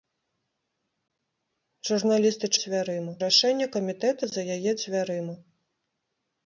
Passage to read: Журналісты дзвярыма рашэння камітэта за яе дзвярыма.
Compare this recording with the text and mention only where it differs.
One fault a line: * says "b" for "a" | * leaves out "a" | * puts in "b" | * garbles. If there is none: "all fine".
all fine